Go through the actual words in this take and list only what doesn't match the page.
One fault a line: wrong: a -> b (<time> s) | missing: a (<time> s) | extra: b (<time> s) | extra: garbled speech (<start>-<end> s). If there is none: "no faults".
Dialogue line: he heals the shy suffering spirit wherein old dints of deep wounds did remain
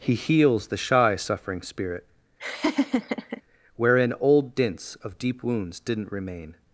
wrong: did -> didn't (5.8 s)